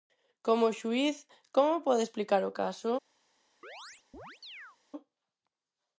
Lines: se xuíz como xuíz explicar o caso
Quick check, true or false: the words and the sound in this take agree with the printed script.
false